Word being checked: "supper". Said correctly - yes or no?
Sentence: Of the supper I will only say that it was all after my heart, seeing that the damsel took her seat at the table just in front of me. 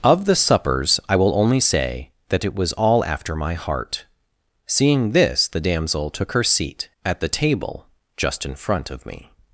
no